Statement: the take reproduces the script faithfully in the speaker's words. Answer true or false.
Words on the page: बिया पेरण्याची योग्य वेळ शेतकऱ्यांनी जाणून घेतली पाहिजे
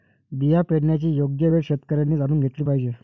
true